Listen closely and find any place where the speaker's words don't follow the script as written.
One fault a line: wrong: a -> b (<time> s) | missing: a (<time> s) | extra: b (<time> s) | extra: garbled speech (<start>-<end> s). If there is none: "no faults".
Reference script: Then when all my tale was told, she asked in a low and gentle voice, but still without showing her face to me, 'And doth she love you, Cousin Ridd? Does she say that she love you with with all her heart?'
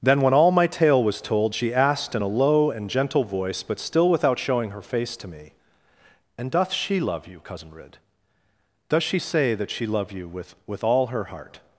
no faults